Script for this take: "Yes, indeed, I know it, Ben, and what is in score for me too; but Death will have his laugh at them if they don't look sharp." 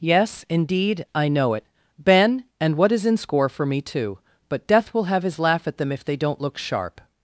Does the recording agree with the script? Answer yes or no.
yes